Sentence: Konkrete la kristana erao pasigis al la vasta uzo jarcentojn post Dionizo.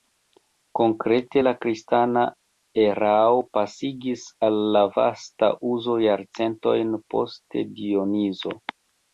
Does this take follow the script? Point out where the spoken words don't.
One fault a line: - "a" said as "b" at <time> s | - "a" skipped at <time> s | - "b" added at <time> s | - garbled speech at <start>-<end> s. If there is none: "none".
none